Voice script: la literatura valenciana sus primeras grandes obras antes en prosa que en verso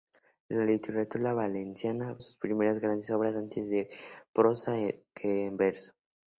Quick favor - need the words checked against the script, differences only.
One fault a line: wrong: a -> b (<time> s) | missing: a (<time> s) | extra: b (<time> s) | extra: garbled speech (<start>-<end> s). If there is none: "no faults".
no faults